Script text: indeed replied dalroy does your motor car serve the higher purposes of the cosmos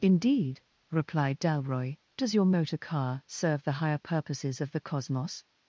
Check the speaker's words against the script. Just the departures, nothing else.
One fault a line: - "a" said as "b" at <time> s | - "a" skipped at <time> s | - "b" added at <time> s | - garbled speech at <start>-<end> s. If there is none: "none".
none